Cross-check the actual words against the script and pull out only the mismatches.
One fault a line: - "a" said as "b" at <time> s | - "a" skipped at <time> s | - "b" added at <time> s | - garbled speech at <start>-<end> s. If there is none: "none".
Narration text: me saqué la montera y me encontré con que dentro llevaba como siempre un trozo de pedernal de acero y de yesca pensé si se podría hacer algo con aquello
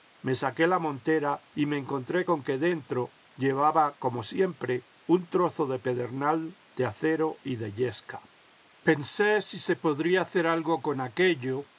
none